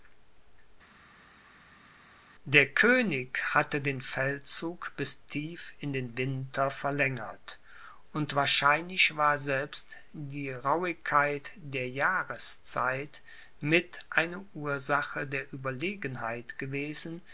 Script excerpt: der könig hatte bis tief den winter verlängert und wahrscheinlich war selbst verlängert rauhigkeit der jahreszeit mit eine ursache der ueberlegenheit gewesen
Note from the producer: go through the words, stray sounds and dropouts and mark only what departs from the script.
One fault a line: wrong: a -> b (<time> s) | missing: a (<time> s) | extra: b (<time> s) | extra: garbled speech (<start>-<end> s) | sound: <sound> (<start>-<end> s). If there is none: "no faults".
extra: den feldzug (3.8 s)
extra: in (5.8 s)
wrong: verlängert -> die (10.1 s)